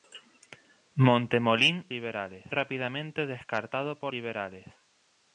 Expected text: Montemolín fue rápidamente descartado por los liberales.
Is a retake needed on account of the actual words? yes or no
yes